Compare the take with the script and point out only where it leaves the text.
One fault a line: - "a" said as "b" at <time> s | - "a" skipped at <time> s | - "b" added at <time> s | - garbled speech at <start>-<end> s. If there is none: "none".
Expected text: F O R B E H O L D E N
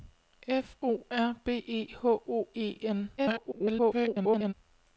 - "L D" skipped at 2.5 s
- garbled speech at 3.2-4.5 s